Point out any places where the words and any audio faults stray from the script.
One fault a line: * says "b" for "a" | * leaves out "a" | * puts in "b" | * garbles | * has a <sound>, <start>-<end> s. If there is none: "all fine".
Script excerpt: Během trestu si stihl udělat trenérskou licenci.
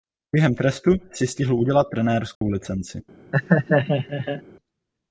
* has a dropout, 2.4-2.4 s
* has a laugh, 3.3-4.4 s